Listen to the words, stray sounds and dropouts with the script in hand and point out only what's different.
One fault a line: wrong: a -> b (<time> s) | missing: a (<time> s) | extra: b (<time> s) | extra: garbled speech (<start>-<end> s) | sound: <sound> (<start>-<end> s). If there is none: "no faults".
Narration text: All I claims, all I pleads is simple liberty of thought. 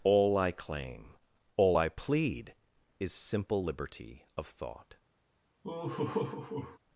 wrong: claims -> claim (0.5 s)
wrong: pleads -> plead (1.9 s)
sound: laugh (5.6-6.8 s)